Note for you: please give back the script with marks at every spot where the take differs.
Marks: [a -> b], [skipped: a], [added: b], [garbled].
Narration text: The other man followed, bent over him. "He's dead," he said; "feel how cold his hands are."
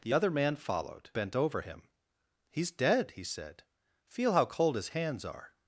The other man followed, bent over him. "He's dead," he said; "feel how cold his hands are."